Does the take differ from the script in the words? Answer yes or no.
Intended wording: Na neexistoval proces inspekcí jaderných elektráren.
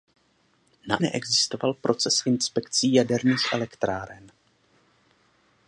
no